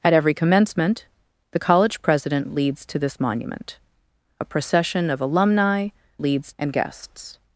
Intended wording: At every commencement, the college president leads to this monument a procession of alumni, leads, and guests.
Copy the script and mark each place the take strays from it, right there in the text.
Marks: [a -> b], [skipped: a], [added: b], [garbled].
At every commencement, the college president leads to this monument a procession of alumni, leads, and guests.